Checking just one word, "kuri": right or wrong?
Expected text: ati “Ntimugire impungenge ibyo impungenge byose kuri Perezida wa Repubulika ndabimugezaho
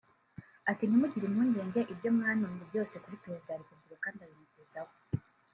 right